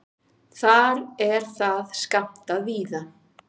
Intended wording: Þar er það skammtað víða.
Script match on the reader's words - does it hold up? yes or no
yes